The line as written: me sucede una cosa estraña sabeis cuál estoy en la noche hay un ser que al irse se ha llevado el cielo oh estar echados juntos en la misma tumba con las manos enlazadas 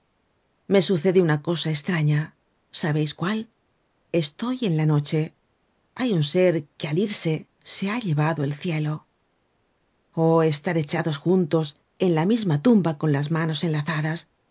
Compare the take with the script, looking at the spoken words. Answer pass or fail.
pass